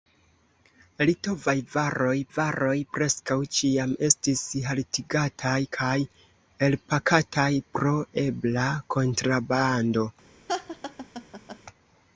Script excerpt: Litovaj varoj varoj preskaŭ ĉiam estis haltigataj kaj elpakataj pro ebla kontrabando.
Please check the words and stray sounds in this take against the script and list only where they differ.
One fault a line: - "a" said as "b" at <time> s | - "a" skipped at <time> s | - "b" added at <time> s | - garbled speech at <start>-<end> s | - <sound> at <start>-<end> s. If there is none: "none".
- laugh at 10.5-11.6 s